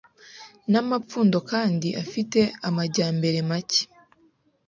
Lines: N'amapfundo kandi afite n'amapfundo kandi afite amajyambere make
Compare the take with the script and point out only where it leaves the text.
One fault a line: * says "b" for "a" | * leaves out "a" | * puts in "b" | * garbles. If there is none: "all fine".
* leaves out "n'amapfundo kandi afite"